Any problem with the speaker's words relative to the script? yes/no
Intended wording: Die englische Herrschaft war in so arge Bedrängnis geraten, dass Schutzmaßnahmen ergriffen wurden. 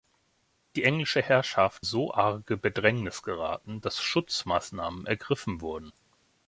yes